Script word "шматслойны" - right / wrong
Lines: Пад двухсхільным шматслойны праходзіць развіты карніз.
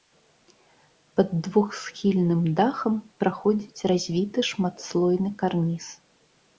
wrong